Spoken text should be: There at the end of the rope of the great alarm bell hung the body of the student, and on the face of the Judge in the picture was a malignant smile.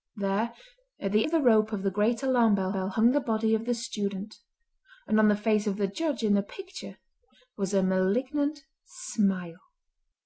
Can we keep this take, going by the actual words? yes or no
no